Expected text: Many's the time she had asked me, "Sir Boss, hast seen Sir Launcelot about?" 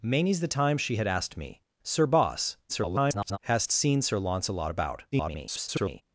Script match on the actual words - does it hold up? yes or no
no